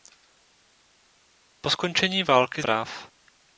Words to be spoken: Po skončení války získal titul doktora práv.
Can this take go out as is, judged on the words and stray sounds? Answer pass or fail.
fail